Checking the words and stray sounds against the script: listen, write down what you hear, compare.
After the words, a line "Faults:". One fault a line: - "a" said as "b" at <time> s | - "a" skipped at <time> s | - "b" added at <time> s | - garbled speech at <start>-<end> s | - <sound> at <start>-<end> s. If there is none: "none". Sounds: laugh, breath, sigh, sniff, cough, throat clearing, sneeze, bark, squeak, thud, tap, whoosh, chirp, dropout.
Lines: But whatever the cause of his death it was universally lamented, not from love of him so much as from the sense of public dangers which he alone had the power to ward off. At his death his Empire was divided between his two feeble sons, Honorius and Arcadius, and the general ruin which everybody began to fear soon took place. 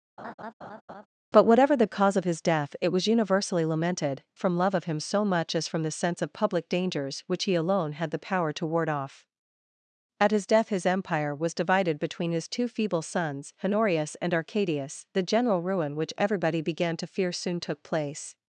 But whatever the cause of his death it was universally lamented, from love of him so much as from the sense of public dangers which he alone had the power to ward off. At his death his Empire was divided between his two feeble sons, Honorius and Arcadius, the general ruin which everybody began to fear soon took place.
Faults:
- laugh at 0.2-1.1 s
- "not" skipped at 4.2 s
- "and" skipped at 15.0 s